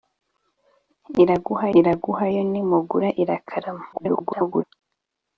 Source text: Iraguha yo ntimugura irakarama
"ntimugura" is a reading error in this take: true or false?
false